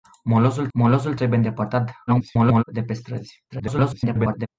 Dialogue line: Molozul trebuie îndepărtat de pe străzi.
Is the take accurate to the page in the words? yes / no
no